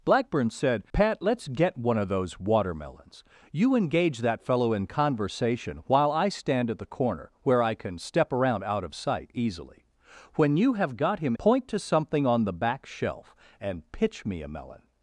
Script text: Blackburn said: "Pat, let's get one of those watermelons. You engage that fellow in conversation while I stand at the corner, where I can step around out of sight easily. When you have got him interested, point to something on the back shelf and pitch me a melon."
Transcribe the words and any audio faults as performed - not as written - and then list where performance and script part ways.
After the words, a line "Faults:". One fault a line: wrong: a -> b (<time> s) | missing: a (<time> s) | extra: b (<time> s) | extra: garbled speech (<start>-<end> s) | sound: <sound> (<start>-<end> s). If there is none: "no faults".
Blackburn said: "Pat, let's get one of those watermelons. You engage that fellow in conversation while I stand at the corner, where I can step around out of sight easily. When you have got him point to something on the back shelf and pitch me a melon."
Faults:
missing: interested (11.3 s)